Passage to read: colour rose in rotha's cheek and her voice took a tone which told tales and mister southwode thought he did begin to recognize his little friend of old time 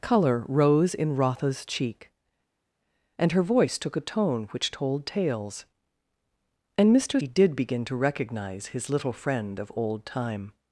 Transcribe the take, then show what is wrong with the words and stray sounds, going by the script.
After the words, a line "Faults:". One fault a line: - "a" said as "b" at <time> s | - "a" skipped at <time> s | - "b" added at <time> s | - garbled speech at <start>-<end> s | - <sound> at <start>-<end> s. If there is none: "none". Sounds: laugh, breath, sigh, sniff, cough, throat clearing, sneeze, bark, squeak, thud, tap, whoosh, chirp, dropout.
colour rose in rotha's cheek and her voice took a tone which told tales and mister he did begin to recognize his little friend of old time
Faults:
- "southwode thought" skipped at 7.2 s